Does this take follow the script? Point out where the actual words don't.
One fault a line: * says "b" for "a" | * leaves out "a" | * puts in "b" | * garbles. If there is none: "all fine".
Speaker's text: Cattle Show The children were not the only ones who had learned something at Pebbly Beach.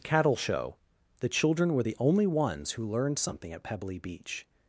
* leaves out "not"
* leaves out "had"